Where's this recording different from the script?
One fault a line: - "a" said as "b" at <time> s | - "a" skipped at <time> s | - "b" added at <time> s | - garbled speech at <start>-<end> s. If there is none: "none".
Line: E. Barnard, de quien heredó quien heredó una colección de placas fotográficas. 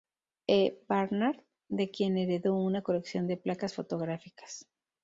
- "quien heredó" skipped at 2.6 s